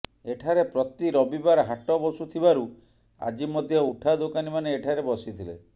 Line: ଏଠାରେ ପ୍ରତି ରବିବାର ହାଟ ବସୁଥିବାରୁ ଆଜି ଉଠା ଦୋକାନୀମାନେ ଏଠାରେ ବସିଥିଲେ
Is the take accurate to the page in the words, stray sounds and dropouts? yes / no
no